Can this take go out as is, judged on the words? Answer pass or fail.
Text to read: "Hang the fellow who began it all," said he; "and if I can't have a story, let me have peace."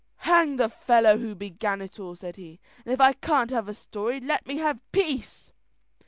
pass